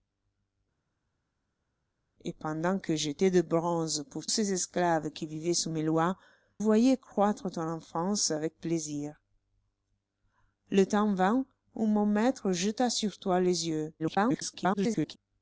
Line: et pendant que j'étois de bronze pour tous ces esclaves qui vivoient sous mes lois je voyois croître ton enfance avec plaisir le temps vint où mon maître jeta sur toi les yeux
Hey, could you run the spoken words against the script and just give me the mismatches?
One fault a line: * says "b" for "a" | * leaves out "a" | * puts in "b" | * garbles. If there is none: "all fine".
* leaves out "tous"
* leaves out "je"
* garbles